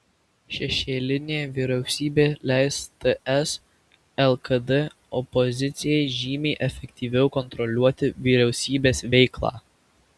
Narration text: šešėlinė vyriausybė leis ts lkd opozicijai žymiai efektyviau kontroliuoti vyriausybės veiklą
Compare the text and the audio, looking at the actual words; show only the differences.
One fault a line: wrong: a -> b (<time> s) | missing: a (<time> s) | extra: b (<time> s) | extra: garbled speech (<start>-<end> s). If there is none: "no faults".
no faults